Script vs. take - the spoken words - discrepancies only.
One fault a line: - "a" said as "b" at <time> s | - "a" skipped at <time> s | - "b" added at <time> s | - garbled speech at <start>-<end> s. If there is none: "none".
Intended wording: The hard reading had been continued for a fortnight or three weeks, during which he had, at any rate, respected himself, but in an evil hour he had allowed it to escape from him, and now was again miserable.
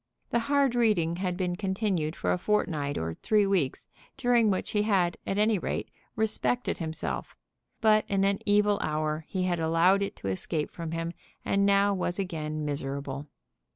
none